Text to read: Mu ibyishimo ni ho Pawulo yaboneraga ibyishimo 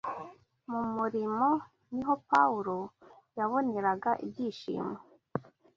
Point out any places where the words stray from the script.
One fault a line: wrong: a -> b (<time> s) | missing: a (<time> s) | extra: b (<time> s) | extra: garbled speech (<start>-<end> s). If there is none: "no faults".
wrong: ibyishimo -> murimo (0.9 s)